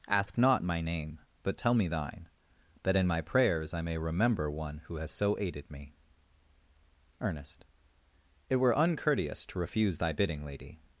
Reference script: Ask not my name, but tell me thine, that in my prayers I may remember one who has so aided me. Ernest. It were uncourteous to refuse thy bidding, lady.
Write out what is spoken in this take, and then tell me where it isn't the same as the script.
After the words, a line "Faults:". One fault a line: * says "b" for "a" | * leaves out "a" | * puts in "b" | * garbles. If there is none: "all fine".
Ask not my name, but tell me thine, that in my prayers I may remember one who has so aided me. Ernest. It were uncourteous to refuse thy bidding, lady.
Faults:
all fine